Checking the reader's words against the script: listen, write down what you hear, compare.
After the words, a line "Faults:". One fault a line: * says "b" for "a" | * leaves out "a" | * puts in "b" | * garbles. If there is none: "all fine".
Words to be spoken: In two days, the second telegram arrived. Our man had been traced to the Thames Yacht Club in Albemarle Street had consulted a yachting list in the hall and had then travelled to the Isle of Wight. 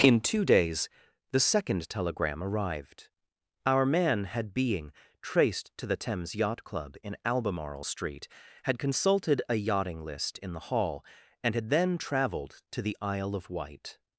In two days, the second telegram arrived. Our man had being traced to the Thames Yacht Club in Albemarle Street had consulted a yachting list in the hall and had then travelled to the Isle of Wight.
Faults:
* says "being" for "been"